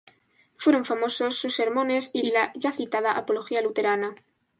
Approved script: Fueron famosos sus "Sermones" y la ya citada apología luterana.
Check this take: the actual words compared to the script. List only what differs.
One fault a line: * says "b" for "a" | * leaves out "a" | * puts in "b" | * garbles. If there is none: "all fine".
* puts in "y"